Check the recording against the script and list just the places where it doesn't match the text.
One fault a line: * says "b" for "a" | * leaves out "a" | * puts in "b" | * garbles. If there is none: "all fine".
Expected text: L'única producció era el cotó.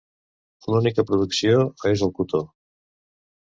* says "és" for "era"